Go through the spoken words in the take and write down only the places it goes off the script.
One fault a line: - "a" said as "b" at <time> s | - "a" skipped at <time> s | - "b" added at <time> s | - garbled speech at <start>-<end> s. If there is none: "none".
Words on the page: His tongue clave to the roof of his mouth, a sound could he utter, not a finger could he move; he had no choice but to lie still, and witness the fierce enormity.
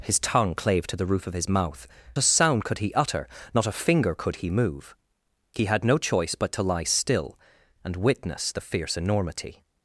none